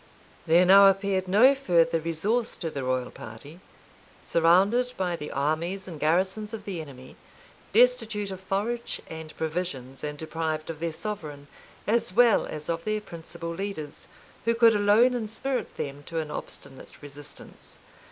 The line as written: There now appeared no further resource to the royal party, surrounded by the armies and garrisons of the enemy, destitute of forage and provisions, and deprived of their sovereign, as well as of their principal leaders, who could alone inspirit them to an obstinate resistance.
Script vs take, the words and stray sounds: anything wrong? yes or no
no